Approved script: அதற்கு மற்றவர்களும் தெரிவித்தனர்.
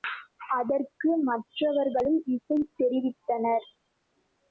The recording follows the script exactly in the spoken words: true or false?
true